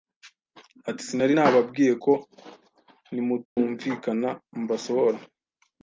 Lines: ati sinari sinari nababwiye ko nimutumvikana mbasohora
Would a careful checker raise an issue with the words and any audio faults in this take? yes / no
yes